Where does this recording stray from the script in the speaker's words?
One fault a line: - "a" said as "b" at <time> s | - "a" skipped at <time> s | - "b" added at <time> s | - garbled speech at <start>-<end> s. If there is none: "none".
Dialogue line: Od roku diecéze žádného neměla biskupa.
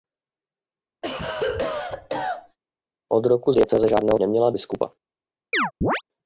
none